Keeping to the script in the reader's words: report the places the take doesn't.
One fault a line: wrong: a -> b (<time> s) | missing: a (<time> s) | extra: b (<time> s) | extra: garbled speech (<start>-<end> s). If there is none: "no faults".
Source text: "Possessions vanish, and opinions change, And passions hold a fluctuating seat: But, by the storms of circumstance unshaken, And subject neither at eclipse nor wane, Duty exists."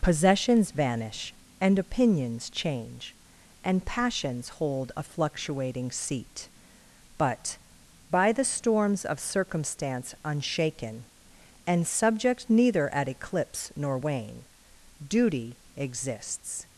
no faults